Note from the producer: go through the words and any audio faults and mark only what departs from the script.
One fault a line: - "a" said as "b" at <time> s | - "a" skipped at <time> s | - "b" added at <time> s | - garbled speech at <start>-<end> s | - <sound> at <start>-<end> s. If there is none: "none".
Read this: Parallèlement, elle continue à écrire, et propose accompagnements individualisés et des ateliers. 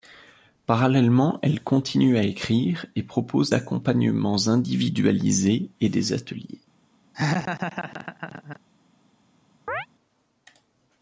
- laugh at 7.1-8.6 s
- chirp at 9.7-9.9 s